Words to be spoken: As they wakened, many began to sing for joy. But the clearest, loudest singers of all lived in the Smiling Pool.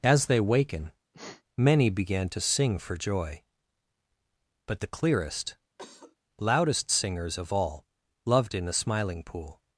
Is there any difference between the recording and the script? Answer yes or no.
yes